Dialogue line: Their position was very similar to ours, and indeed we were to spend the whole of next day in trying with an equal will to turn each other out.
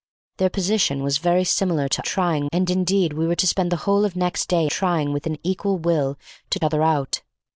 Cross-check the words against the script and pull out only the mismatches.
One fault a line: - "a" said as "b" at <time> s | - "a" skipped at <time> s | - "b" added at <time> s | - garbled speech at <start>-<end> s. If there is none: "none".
- "ours" said as "trying" at 2.0 s
- "in" skipped at 4.7 s
- "turn each" skipped at 6.6 s